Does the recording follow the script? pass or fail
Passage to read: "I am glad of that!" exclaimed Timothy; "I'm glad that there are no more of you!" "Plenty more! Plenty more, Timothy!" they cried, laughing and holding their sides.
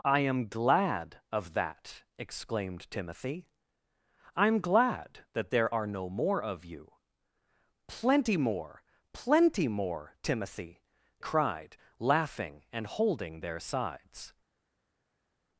fail